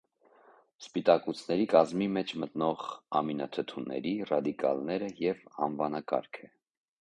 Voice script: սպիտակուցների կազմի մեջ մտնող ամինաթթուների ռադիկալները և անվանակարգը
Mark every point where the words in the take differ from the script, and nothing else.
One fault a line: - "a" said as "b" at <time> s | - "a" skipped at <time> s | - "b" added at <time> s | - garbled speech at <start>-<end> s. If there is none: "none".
none